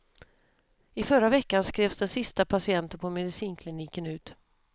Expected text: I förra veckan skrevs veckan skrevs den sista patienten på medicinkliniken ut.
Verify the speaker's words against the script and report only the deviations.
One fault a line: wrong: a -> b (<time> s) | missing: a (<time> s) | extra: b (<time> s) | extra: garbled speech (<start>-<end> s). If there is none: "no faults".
missing: veckan skrevs (2.0 s)